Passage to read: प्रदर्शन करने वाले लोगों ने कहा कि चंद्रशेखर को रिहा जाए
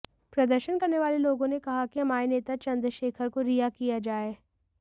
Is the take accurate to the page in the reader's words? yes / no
no